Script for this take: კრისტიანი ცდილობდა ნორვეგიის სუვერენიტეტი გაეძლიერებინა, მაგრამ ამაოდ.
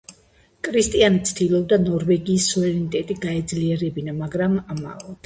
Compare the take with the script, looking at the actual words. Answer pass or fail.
pass